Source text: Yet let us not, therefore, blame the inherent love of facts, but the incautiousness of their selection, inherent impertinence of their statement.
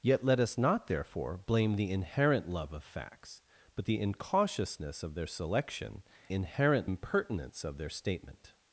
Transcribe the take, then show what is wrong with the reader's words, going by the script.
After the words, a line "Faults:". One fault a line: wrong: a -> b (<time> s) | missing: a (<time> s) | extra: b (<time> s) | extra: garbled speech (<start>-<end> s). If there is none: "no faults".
Yet let us not, therefore, blame the inherent love of facts, but the incautiousness of their selection, inherent impertinence of their statement.
Faults:
no faults